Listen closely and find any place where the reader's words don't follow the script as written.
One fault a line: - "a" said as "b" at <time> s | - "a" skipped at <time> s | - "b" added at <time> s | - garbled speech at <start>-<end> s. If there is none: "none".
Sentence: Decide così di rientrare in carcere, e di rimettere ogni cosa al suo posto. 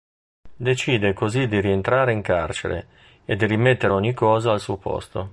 none